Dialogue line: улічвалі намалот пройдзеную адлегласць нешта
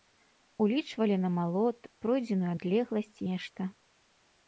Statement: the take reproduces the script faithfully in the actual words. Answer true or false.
true